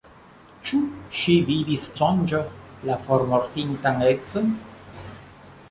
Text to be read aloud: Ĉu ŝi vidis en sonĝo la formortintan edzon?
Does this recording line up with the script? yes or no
no